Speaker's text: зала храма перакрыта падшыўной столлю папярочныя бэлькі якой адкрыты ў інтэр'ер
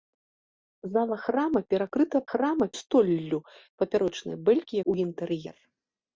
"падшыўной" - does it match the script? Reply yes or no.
no